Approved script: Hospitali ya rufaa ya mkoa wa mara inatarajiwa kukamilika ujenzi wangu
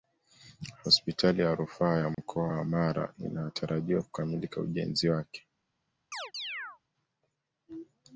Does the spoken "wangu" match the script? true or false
false